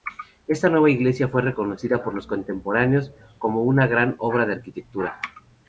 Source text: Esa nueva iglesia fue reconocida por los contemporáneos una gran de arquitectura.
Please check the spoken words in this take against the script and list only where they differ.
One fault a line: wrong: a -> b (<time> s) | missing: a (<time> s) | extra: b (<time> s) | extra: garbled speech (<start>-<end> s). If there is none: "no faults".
wrong: Esa -> Esta (0.5 s)
extra: como (3.4 s)
extra: obra (4.2 s)